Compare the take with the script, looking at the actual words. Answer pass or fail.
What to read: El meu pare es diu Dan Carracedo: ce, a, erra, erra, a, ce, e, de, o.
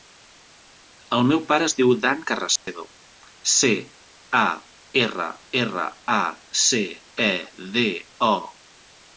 pass